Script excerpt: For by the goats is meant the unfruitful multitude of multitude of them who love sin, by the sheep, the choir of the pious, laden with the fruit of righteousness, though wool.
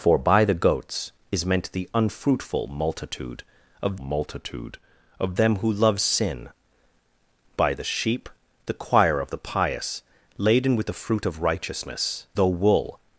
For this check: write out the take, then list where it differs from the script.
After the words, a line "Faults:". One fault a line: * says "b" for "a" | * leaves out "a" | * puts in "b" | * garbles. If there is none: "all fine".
For by the goats is meant the unfruitful multitude of multitude of them who love sin, by the sheep, the choir of the pious, laden with the fruit of righteousness, though wool.
Faults:
all fine